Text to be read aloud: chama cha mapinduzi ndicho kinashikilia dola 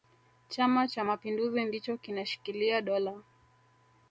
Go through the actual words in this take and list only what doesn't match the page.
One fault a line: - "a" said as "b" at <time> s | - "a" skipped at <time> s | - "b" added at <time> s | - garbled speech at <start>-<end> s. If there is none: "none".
none